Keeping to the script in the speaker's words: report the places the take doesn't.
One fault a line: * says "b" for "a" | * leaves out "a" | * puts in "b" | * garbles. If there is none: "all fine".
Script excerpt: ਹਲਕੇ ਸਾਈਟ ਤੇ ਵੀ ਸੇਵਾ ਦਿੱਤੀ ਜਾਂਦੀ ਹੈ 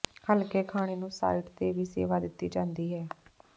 * puts in "ਖਾਣੇ ਨੂੰ"